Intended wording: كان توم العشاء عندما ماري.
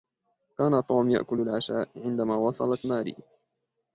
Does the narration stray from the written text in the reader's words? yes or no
yes